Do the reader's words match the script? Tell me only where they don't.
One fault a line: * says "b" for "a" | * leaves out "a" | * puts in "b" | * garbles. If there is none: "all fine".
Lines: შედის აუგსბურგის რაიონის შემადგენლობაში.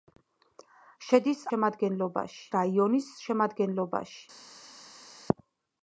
* says "შემადგენლობაში" for "აუგსბურგის"